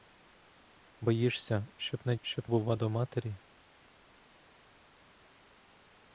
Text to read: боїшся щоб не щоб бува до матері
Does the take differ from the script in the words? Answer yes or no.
no